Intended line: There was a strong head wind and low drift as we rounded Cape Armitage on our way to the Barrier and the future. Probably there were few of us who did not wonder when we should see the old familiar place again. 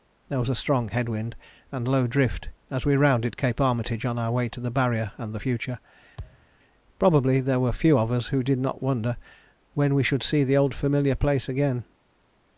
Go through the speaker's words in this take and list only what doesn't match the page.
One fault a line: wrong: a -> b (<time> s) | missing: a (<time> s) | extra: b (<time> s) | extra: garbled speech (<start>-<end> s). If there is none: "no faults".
no faults